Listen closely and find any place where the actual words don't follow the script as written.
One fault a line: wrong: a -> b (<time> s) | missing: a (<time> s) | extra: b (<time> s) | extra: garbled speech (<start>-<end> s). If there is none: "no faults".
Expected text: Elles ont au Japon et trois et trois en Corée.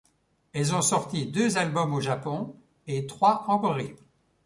extra: sorti deux albums (0.8 s)
missing: et trois (3.4 s)